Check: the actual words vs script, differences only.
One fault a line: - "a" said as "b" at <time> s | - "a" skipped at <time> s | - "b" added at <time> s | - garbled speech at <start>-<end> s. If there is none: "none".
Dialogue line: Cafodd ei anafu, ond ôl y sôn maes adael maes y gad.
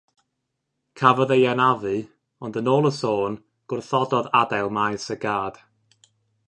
- "yn" added at 2.6 s
- "maes" said as "gwrthododd" at 3.7 s